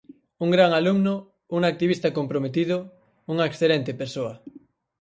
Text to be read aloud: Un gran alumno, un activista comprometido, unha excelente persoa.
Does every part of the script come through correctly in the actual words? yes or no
yes